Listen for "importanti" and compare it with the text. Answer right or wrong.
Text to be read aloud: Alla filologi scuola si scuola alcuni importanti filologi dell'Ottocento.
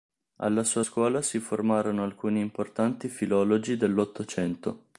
right